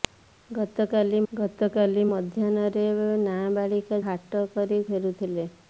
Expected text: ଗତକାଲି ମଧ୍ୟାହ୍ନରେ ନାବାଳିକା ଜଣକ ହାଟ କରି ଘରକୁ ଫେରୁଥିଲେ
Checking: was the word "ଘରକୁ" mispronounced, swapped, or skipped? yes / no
yes